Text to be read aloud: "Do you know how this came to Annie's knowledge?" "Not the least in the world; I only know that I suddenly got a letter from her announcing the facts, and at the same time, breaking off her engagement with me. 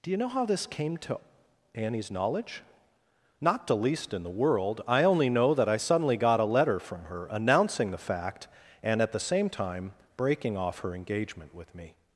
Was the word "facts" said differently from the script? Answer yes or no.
yes